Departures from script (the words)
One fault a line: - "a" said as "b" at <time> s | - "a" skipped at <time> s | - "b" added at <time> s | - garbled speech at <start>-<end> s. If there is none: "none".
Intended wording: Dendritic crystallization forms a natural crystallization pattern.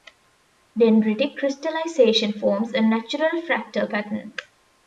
- "crystallization" said as "fractal" at 3.4 s